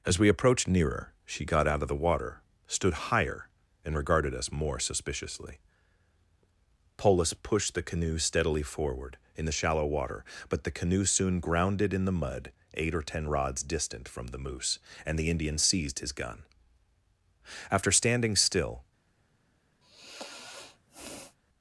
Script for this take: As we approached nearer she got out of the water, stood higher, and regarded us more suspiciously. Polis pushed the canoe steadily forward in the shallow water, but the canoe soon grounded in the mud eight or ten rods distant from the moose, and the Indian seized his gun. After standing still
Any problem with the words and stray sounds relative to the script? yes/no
yes